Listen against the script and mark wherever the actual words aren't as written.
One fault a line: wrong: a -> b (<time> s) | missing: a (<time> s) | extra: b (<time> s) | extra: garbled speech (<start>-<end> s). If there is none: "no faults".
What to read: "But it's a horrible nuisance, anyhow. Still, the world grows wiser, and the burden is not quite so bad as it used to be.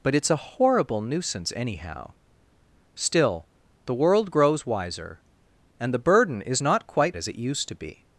missing: so bad (7.2 s)